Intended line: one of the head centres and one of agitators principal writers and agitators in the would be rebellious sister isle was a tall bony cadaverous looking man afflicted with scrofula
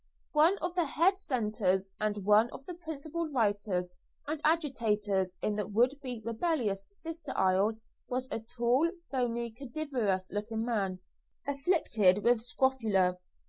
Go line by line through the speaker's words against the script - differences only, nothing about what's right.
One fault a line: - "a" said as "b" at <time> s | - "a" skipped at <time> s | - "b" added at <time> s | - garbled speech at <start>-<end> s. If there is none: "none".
- "agitators" said as "the" at 2.7 s